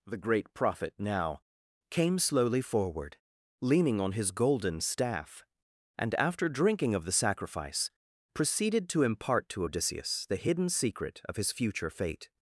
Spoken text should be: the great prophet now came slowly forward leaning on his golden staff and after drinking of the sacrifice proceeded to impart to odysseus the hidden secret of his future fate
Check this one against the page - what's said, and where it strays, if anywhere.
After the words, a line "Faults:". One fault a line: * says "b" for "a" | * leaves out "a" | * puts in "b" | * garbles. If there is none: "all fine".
the great prophet now came slowly forward leaning on his golden staff and after drinking of the sacrifice proceeded to impart to odysseus the hidden secret of his future fate
Faults:
all fine